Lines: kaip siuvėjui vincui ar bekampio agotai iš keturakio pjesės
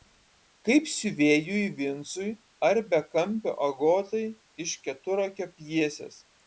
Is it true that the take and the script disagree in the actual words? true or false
false